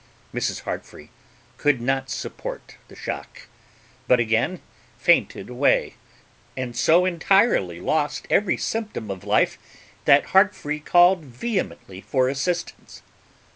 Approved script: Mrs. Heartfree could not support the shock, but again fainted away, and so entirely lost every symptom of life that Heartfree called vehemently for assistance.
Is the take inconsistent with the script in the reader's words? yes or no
no